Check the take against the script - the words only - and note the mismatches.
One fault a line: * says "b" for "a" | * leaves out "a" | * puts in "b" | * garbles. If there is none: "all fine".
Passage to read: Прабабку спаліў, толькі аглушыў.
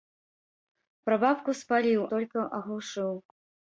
all fine